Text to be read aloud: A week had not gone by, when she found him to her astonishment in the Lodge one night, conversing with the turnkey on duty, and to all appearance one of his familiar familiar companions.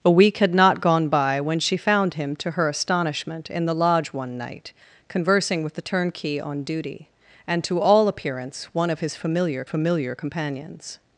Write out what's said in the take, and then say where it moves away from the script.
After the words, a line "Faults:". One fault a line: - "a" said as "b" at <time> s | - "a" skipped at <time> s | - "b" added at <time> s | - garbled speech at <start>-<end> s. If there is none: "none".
A week had not gone by, when she found him to her astonishment in the Lodge one night, conversing with the turnkey on duty, and to all appearance one of his familiar familiar companions.
Faults:
none